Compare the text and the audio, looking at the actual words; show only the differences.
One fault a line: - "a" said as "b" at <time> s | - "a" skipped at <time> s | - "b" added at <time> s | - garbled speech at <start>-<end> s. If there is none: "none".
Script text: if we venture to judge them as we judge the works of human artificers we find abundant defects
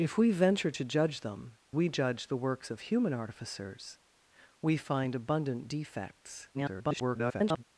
- "as" skipped at 1.6 s
- garbled speech at 6.5-7.6 s